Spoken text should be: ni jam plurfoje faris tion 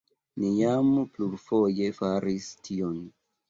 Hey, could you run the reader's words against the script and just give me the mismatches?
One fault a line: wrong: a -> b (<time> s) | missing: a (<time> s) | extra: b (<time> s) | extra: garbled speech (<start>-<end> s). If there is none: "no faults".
no faults